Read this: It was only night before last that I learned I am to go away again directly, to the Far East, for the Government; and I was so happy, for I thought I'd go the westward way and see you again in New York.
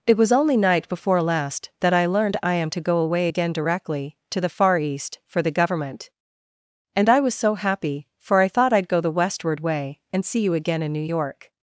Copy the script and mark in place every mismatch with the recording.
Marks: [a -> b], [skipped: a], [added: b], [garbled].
It was only night before last that I learned I am to go away again directly, to the Far East, for the Government; and I was so happy, for I thought I'd go the westward way and see you again in New York.